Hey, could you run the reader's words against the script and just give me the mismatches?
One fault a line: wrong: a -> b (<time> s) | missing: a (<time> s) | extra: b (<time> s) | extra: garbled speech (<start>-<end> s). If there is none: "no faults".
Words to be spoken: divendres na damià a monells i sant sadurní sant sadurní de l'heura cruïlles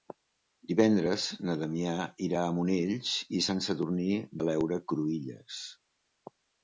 extra: irà (2.3 s)
missing: sant sadurní (4.1 s)